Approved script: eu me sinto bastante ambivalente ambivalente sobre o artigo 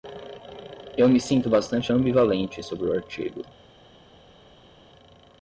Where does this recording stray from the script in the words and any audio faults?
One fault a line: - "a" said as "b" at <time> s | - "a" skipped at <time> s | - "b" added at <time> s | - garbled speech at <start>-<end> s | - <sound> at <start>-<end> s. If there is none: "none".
- "ambivalente" skipped at 2.6 s